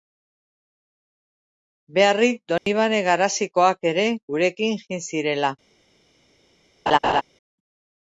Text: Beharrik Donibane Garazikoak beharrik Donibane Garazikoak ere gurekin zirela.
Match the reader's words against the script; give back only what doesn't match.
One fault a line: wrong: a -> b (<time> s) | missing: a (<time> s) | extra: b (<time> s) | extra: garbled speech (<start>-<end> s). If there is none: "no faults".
missing: beharrik Donibane Garazikoak (3.9 s)
extra: jin (4.9 s)